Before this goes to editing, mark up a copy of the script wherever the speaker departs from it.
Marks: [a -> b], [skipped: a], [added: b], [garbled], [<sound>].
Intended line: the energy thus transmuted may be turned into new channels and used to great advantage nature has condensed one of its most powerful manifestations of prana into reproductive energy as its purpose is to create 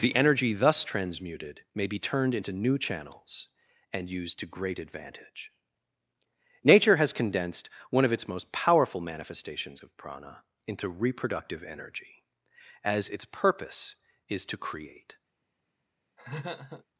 the energy thus transmuted may be turned into new channels and used to great advantage nature has condensed one of its most powerful manifestations of prana into reproductive energy as its purpose is to create [laugh]